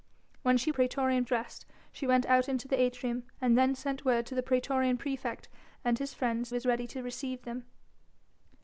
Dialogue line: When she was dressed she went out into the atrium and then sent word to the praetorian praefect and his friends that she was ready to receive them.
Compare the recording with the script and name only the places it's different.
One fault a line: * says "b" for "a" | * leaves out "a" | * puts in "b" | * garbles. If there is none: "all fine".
* says "praetorian" for "was"
* leaves out "that she"